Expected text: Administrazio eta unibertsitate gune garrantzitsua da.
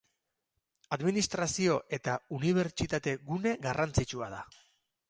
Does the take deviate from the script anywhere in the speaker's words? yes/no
no